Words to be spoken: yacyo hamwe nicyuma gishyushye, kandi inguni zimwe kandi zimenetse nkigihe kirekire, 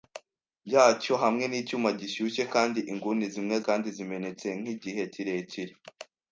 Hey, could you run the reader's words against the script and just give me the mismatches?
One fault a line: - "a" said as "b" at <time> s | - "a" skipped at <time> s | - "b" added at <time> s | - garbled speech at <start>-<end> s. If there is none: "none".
none